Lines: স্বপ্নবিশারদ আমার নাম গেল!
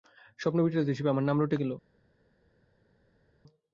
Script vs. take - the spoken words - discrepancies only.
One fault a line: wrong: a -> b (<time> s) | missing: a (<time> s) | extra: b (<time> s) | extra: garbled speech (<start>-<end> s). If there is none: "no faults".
extra: হিসেবে (0.9 s)
extra: রটে (1.4 s)